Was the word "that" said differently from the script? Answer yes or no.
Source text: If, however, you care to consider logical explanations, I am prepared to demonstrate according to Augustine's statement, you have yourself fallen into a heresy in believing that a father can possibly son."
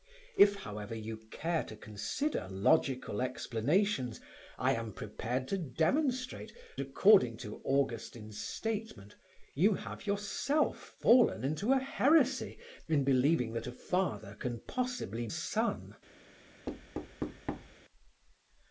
no